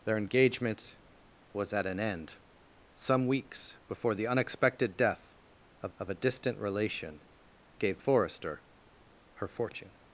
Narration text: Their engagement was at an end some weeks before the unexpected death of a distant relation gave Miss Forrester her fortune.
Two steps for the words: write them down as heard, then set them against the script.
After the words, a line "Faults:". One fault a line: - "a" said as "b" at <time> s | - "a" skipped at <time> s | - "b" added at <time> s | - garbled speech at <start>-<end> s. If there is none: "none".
Their engagement was at an end some weeks before the unexpected death of of a distant relation gave Forrester her fortune.
Faults:
- "of" added at 6.0 s
- "Miss" skipped at 8.0 s